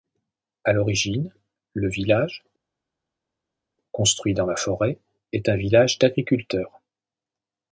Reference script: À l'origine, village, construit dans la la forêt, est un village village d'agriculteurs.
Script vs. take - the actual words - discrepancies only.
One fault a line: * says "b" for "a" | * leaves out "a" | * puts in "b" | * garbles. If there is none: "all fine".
* puts in "le"
* leaves out "la"
* leaves out "village"